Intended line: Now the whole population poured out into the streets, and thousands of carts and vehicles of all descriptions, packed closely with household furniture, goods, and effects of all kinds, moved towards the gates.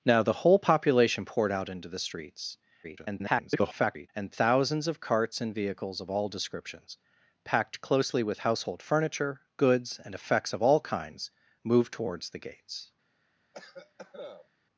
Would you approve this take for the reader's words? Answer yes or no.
no